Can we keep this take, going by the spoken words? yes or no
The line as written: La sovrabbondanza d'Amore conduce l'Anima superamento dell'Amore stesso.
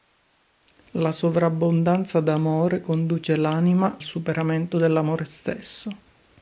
yes